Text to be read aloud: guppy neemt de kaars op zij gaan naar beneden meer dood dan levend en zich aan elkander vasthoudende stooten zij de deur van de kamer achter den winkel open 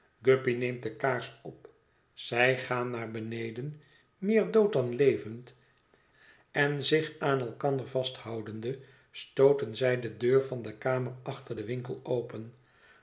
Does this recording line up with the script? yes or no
yes